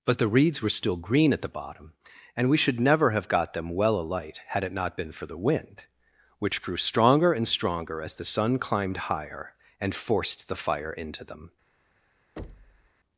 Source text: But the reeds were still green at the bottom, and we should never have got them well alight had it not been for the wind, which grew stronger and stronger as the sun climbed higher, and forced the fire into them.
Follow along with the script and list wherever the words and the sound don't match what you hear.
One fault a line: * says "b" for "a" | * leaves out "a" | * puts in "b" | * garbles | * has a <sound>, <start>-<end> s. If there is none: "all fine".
* has a thud, 12.4-12.9 s